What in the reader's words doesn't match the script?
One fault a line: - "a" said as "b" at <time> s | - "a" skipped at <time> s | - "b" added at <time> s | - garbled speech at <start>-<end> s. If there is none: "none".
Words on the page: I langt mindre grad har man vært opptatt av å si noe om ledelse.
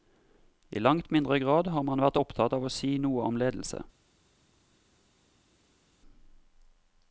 none